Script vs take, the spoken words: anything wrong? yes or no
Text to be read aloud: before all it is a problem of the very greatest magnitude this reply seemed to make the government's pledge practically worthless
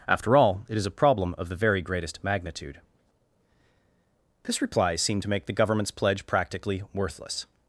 yes